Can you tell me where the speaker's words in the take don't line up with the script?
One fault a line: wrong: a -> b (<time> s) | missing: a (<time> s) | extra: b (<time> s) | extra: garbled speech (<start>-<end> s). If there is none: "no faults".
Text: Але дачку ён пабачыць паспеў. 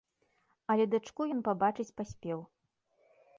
no faults